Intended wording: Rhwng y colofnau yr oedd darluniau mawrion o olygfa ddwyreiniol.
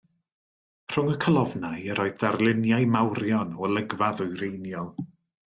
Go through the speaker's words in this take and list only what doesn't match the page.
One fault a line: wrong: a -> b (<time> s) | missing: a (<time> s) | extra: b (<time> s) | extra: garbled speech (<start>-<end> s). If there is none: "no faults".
no faults